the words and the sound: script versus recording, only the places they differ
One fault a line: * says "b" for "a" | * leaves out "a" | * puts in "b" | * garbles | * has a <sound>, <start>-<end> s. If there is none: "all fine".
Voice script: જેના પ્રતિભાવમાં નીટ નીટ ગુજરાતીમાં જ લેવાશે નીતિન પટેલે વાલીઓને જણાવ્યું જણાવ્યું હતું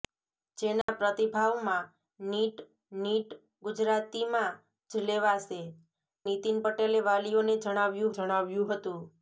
* has a dropout, 0.8-0.9 s